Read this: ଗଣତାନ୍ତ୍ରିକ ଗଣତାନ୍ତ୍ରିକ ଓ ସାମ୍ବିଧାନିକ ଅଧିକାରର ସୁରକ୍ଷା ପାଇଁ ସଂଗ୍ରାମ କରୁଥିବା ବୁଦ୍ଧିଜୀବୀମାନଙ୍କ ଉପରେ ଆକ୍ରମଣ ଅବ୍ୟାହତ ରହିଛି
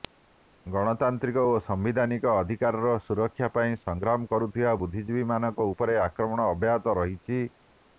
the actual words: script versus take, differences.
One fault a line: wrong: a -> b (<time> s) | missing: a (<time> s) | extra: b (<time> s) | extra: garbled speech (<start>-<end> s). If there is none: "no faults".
missing: ଗଣତାନ୍ତ୍ରିକ (1.4 s)